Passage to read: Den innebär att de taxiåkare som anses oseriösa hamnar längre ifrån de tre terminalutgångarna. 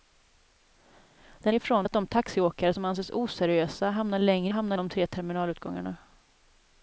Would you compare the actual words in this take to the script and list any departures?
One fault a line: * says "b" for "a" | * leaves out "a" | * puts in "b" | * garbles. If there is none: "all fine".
* says "ifrån" for "innebär"
* says "hamnar" for "ifrån"